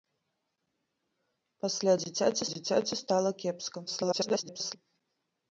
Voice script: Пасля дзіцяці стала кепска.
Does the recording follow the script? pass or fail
fail